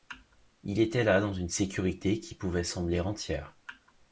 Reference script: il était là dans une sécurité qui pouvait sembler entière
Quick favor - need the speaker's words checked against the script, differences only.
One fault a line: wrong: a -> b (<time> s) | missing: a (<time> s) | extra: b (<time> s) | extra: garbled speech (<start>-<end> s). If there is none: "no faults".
no faults